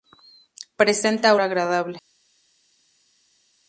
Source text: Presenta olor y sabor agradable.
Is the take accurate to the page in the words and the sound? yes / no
no